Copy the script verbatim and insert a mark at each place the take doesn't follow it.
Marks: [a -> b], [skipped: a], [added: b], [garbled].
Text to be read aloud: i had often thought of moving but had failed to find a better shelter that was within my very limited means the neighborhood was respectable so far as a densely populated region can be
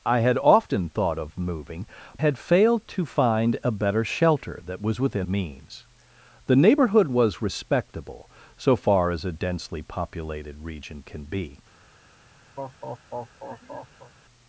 i had often thought of moving [skipped: but] had failed to find a better shelter that was within [skipped: my very limited] means the neighborhood was respectable so far as a densely populated region can be